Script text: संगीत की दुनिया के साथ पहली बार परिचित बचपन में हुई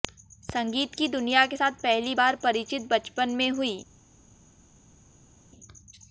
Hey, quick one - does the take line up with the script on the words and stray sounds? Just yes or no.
yes